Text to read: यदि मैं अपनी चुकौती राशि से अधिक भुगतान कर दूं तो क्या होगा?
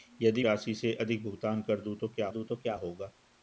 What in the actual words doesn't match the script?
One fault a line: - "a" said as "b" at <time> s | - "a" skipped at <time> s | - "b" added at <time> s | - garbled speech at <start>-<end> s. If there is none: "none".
- "मैं अपनी चुकौती" skipped at 0.4 s
- "दूं तो क्या" added at 2.3 s